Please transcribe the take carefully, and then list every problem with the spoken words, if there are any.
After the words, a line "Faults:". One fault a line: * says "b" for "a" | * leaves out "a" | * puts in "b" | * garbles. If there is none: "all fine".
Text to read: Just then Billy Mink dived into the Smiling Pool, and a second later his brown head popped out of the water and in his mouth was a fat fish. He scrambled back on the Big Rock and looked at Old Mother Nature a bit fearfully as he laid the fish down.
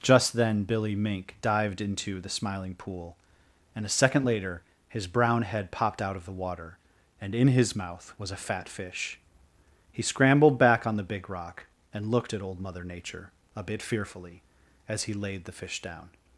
Just then Billy Mink dived into the Smiling Pool, and a second later his brown head popped out of the water and in his mouth was a fat fish. He scrambled back on the Big Rock and looked at Old Mother Nature a bit fearfully as he laid the fish down.
Faults:
all fine